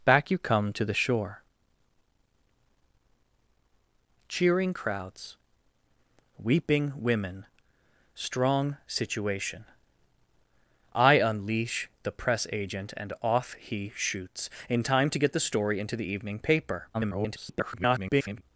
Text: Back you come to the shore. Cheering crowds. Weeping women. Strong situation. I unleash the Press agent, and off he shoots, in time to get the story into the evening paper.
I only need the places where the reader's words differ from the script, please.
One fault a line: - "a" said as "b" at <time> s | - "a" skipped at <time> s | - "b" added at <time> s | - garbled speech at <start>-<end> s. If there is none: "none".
- garbled speech at 16.9-18.4 s